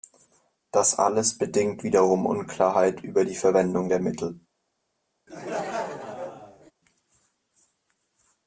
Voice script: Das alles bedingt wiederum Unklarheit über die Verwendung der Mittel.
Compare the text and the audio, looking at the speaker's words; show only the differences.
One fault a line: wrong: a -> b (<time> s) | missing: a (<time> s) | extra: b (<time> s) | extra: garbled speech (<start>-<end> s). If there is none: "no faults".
no faults